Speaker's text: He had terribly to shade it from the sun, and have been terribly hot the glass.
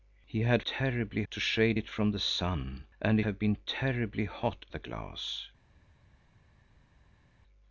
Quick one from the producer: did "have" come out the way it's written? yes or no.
yes